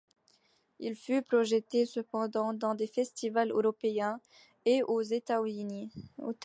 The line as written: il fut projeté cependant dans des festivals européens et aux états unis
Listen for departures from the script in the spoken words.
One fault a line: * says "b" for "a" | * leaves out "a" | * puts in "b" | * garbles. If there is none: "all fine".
all fine